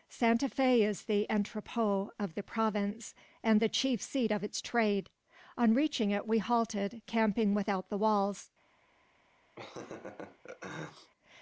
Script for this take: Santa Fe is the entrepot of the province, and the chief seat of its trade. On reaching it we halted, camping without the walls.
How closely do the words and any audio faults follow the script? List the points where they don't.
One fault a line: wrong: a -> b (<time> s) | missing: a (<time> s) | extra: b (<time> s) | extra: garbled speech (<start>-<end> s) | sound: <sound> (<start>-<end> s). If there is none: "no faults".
sound: laugh (9.6-11.1 s)